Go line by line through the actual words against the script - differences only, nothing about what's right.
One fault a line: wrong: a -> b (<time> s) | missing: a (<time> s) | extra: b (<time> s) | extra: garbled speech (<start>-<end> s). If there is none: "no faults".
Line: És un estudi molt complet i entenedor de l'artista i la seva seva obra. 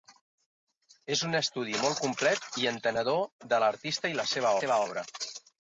no faults